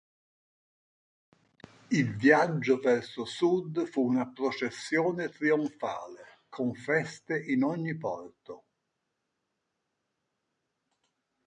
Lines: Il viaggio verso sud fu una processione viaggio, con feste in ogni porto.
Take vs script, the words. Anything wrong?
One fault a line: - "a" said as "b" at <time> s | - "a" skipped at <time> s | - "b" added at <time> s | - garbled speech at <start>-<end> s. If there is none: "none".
- "viaggio" said as "trionfale" at 5.3 s